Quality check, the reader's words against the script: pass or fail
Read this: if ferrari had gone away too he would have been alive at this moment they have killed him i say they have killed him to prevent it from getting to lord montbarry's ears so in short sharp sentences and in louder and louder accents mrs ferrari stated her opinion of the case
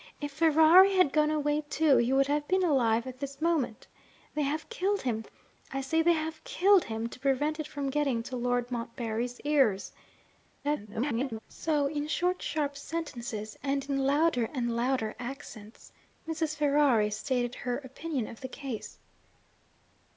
fail